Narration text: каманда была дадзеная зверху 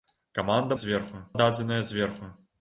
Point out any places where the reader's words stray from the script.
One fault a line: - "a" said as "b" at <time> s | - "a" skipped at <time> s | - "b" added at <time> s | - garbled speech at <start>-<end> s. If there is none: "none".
- "была" said as "зверху" at 0.7 s